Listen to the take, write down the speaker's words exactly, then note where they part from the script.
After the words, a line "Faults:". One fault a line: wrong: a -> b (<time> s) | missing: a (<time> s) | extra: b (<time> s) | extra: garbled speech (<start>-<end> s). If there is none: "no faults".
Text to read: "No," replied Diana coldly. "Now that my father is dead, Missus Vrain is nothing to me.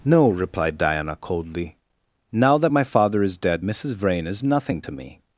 "No," replied Diana coldly. "Now that my father is dead, Missus Vrain is nothing to me.
Faults:
no faults